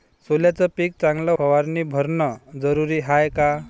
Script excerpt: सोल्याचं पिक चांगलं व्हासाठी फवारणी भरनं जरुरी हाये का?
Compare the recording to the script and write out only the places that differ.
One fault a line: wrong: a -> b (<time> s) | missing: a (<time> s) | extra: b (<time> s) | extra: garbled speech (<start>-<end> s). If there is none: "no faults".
missing: व्हासाठी (1.3 s)